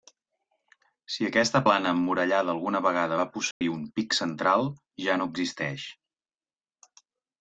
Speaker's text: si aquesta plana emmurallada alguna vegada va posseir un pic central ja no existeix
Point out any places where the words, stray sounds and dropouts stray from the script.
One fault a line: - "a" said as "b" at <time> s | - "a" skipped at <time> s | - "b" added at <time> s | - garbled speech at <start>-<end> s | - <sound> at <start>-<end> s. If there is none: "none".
- dropout at 3.5-3.6 s